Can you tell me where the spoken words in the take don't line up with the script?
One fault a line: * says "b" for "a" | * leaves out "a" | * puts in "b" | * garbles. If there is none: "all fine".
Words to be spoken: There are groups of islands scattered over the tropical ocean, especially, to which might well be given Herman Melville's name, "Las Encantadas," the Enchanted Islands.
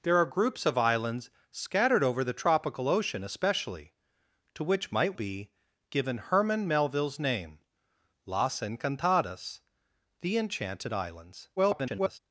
* leaves out "well"
* garbles